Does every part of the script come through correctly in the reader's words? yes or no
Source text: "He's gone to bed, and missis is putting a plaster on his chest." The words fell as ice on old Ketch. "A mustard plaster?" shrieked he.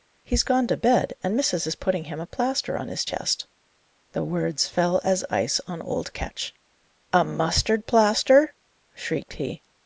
no